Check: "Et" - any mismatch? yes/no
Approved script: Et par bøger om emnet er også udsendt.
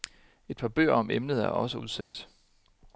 no